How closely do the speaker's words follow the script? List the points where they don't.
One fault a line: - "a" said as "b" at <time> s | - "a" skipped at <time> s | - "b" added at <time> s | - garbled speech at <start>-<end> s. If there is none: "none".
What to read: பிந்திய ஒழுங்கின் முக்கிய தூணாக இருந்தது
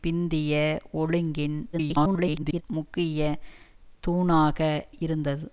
- garbled speech at 1.7-2.6 s